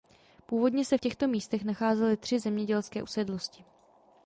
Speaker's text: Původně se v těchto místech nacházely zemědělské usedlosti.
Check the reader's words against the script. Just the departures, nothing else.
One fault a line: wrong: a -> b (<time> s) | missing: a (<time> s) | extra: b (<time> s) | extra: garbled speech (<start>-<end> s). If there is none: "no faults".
extra: tři (2.2 s)